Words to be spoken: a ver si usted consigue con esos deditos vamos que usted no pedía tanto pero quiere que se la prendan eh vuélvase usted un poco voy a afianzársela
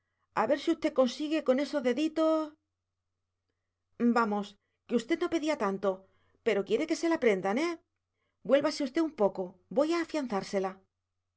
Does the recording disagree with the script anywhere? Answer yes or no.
no